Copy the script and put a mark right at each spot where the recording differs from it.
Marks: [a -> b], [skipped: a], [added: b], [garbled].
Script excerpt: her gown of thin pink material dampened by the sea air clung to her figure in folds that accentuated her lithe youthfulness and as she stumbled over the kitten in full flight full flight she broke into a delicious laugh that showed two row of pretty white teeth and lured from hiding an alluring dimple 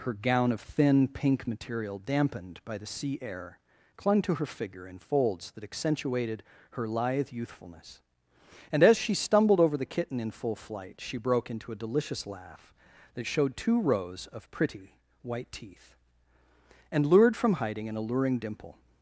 her gown of thin pink material dampened by the sea air clung to her figure in folds that accentuated her lithe youthfulness and as she stumbled over the kitten in full flight [skipped: full flight] she broke into a delicious laugh that showed two [row -> rows] of pretty white teeth and lured from hiding an alluring dimple